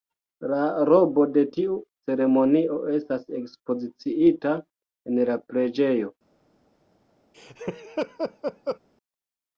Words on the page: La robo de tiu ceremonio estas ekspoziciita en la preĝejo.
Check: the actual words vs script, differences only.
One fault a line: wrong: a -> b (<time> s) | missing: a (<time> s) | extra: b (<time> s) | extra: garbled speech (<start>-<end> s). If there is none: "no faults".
no faults